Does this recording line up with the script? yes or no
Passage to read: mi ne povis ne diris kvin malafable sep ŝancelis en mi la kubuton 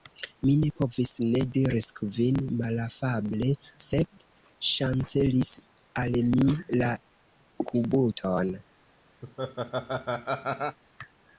no